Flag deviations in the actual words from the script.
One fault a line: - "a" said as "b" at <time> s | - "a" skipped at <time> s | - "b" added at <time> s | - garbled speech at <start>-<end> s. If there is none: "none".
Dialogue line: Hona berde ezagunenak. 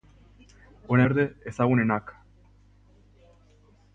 none